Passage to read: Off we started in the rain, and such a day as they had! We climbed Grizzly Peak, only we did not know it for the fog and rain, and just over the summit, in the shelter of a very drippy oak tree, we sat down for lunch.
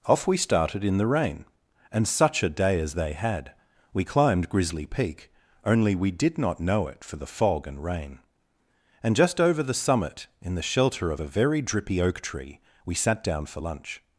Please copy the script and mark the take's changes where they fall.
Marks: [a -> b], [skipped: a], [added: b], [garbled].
Off we started in the rain, and such a day as they had! We climbed Grizzly Peak, only we did not know it for the fog and rain, and just over the summit, in the shelter of a very drippy oak tree, we sat down for lunch.